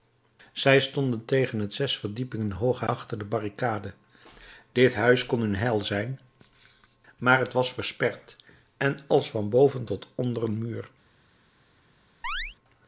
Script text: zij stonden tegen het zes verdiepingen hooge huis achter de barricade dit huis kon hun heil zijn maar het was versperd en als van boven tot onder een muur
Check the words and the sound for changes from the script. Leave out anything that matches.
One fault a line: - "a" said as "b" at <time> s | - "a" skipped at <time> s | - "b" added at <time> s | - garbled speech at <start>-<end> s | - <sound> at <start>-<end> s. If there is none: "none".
- "huis" skipped at 2.9 s
- chirp at 12.2-12.6 s